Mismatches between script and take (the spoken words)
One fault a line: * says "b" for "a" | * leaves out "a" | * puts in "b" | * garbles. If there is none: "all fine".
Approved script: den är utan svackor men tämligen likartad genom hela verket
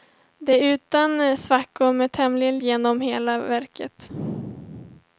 * leaves out "likartad"